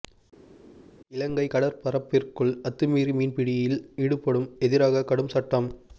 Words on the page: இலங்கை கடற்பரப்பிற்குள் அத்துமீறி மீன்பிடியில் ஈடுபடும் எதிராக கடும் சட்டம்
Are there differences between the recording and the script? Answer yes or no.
no